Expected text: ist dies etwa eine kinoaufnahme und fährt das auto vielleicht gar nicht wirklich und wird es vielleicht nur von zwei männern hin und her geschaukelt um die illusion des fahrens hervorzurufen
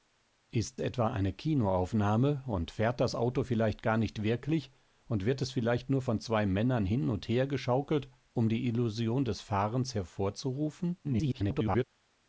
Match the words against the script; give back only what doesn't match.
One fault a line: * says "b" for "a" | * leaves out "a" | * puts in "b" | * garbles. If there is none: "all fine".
* leaves out "dies"
* garbles